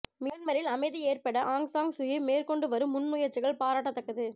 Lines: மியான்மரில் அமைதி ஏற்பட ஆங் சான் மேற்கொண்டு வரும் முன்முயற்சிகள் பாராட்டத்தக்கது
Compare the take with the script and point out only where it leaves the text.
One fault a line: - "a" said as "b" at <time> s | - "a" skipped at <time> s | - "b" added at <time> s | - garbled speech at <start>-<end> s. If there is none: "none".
- "சூகி" added at 1.9 s